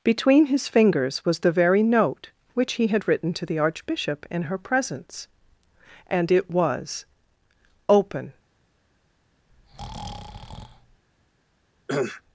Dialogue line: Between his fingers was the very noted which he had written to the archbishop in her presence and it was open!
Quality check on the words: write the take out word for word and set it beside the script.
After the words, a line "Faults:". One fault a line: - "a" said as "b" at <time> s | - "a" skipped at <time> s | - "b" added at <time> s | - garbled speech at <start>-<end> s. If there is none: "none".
Between his fingers was the very note which he had written to the archbishop in her presence and it was open!
Faults:
- "noted" said as "note" at 1.8 s